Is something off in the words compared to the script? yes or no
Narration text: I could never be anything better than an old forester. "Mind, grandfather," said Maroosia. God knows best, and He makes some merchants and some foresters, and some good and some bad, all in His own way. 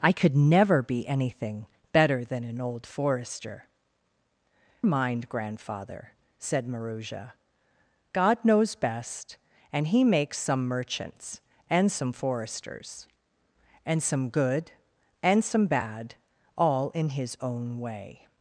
no